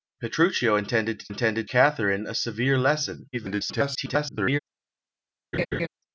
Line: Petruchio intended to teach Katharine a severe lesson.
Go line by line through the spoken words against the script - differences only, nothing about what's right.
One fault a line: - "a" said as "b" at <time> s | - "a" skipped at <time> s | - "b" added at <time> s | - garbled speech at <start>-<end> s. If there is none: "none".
- "teach" said as "intended" at 1.3 s
- garbled speech at 3.3-4.6 s